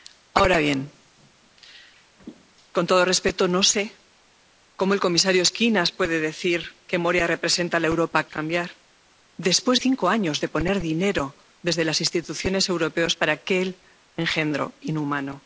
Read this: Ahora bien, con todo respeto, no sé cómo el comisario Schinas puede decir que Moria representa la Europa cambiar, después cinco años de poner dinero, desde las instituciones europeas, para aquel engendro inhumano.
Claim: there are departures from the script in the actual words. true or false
false